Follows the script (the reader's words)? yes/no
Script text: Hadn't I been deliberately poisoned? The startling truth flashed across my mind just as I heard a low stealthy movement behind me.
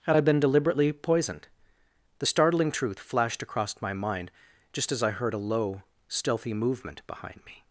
no